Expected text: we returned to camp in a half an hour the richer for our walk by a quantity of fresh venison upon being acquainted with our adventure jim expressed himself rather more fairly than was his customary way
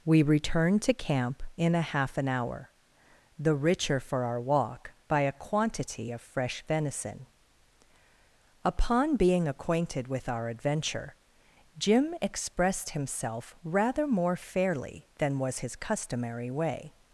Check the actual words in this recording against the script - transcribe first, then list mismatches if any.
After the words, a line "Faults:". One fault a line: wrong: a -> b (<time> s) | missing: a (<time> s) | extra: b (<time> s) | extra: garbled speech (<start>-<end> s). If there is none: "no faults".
we returned to camp in a half an hour the richer for our walk by a quantity of fresh venison upon being acquainted with our adventure jim expressed himself rather more fairly than was his customary way
Faults:
no faults